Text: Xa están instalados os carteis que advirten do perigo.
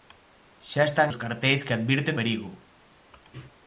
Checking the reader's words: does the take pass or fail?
fail